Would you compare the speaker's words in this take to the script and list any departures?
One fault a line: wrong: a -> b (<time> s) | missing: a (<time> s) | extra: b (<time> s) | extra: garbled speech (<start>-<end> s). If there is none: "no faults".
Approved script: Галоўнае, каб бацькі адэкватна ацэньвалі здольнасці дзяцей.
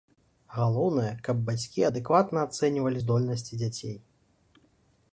no faults